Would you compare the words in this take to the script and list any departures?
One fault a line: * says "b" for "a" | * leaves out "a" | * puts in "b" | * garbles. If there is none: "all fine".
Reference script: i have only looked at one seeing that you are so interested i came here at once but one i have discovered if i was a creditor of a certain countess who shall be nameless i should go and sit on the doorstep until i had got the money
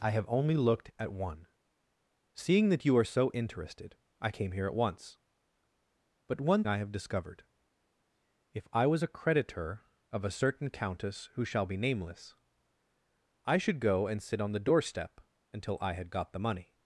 all fine